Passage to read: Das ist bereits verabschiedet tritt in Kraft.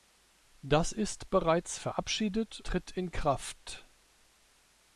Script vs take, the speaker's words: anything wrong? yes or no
no